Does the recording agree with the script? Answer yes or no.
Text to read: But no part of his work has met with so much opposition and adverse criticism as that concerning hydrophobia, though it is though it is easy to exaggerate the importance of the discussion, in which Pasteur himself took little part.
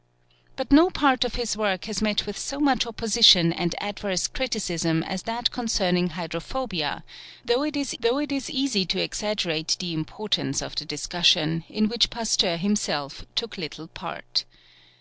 yes